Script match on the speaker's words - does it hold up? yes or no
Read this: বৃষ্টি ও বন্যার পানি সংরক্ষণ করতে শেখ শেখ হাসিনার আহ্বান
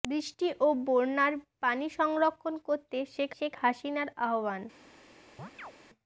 yes